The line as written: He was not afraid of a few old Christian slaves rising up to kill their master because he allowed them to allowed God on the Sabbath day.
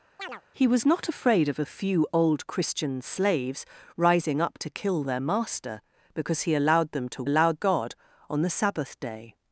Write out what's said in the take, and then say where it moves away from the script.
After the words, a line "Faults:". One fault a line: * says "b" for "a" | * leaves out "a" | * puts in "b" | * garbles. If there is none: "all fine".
He was not afraid of a few old Christian slaves rising up to kill their master because he allowed them to allowed God on the Sabbath day.
Faults:
all fine